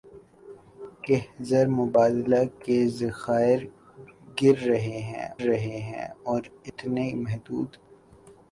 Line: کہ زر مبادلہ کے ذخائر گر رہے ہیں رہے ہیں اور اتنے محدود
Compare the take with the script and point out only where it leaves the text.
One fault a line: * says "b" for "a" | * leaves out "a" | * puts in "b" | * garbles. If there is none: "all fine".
all fine